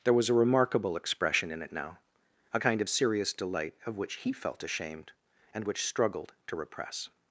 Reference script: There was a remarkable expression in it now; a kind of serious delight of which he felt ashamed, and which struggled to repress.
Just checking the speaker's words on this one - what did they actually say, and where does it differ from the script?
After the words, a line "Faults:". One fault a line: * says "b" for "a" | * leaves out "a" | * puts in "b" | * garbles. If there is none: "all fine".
There was a remarkable expression in it now; a kind of serious delight of which he felt ashamed, and which struggled to repress.
Faults:
all fine